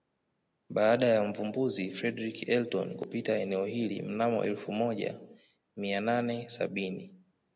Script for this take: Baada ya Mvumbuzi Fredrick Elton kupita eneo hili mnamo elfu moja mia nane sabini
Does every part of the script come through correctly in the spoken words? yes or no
yes